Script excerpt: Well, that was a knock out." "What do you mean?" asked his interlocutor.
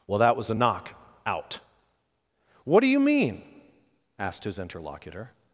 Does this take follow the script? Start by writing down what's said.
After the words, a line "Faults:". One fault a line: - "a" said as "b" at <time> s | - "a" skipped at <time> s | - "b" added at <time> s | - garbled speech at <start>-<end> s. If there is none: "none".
Well, that was a knock out." "What do you mean?" asked his interlocutor.
Faults:
none